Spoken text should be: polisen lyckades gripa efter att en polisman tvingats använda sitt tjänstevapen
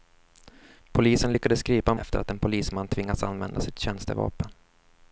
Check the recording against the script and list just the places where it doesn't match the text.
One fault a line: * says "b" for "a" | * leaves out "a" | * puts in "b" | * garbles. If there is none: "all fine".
all fine